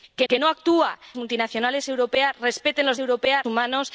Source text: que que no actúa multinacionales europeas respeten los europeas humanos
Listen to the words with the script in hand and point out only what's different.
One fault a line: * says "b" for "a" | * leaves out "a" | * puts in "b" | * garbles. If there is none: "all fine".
all fine